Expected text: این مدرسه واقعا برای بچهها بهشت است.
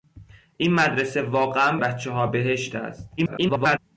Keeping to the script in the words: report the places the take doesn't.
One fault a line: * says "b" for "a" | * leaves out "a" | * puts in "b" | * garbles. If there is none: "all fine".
* leaves out "برای"
* garbles